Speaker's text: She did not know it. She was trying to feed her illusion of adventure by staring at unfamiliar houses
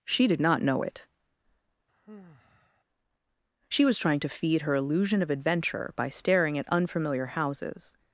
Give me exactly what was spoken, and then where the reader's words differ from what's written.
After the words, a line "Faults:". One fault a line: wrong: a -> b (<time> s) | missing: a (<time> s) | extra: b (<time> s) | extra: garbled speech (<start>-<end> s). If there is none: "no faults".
She did not know it. She was trying to feed her illusion of adventure by staring at unfamiliar houses
Faults:
no faults